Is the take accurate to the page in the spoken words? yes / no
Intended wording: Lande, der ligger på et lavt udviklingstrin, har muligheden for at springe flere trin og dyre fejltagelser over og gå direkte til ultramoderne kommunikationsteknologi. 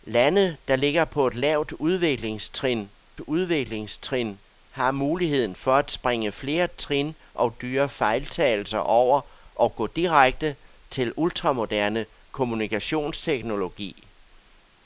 no